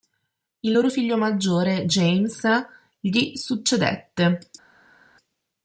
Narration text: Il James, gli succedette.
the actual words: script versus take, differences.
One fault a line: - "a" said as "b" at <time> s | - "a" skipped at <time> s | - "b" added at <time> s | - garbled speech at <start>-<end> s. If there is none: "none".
- "loro figlio maggiore" added at 0.7 s